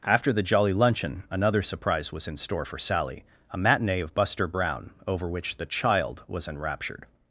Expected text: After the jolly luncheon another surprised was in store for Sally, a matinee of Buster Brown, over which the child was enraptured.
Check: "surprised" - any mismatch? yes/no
yes